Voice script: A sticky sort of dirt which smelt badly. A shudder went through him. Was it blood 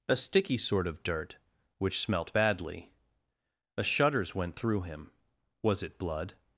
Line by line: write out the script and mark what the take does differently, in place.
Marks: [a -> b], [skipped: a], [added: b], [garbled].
A sticky sort of dirt which smelt badly. A [shudder -> shudders] went through him. Was it blood